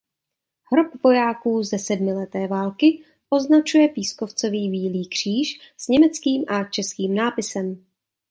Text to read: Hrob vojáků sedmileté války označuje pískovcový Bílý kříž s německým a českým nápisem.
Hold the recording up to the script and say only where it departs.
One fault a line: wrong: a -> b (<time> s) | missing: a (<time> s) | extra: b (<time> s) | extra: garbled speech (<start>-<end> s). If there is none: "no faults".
extra: ze (1.6 s)